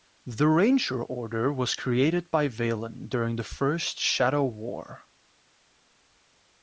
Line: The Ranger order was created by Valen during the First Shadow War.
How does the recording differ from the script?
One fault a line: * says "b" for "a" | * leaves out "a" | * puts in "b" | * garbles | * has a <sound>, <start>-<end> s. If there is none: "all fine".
all fine